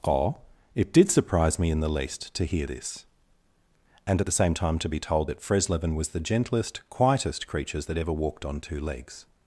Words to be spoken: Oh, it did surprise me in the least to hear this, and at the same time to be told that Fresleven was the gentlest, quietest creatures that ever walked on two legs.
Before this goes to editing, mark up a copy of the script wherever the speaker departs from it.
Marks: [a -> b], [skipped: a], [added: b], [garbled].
Oh, it did surprise me in the least to hear this, and at the same time to be told that Fresleven was the gentlest, quietest creatures that ever walked on two legs.